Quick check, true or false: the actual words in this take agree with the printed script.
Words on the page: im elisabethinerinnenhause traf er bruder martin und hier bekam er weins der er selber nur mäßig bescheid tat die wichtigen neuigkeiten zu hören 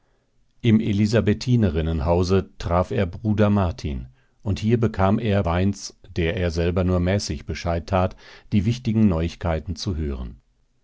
true